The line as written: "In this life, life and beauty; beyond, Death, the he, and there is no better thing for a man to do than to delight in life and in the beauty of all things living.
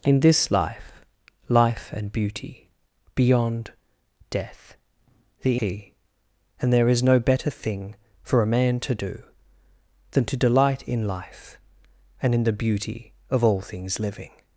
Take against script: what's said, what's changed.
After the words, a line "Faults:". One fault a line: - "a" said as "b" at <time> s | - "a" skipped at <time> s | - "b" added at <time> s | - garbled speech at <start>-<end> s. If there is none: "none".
"In this life, life and beauty; beyond, Death, the he, and there is no better thing for a man to do than to delight in life and in the beauty of all things living.
Faults:
none